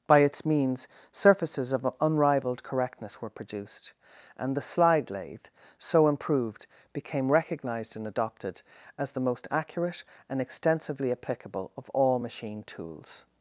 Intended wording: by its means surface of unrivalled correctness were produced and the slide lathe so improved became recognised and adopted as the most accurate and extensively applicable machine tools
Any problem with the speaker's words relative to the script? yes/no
yes